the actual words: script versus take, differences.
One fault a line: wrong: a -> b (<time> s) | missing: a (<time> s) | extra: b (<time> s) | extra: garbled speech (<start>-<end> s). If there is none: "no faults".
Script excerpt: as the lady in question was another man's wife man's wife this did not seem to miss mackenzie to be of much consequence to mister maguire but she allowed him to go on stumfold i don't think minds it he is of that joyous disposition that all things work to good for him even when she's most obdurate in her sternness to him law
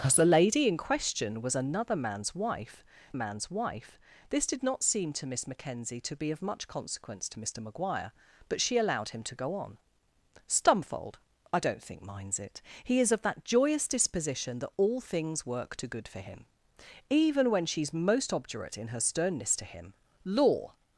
no faults